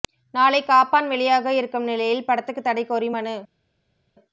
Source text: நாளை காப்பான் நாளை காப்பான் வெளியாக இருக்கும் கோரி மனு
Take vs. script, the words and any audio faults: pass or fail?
fail